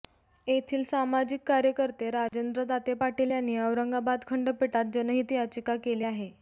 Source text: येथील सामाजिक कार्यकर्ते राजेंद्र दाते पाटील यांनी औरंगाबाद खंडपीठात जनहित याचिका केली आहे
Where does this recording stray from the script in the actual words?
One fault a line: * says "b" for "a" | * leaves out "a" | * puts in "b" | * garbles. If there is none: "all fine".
all fine